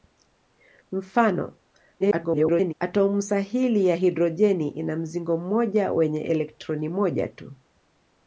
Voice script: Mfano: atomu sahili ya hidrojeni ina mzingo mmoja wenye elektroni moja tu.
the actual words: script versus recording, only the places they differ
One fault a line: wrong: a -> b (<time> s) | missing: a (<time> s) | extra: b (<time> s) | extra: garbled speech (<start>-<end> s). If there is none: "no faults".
extra: garbled speech (2.0-2.7 s)